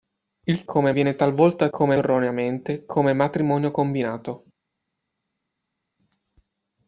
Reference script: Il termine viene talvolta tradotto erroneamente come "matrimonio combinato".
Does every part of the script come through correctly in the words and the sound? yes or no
no